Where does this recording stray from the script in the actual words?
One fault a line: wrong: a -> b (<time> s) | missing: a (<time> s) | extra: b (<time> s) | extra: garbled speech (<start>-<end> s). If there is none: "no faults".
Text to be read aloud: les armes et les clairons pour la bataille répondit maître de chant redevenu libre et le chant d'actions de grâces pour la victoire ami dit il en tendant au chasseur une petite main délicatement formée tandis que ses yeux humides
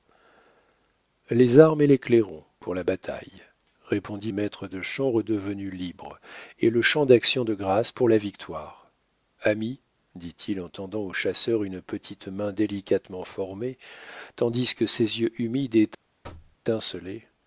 no faults